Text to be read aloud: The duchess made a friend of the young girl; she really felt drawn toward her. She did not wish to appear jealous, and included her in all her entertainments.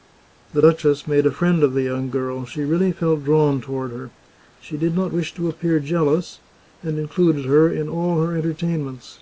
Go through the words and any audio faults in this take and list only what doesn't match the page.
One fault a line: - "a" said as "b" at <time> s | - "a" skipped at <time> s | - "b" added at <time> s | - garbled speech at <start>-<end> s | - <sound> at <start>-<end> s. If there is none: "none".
none